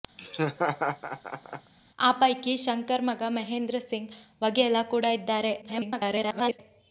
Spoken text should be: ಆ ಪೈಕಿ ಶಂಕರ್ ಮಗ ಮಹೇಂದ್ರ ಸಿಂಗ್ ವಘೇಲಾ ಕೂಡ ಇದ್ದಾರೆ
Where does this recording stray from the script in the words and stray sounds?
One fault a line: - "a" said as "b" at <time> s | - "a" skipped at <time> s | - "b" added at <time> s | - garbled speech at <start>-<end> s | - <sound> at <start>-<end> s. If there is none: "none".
- laugh at 0.2-1.7 s
- garbled speech at 5.6-6.6 s